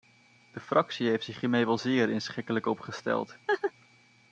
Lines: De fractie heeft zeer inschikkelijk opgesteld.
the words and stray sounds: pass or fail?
fail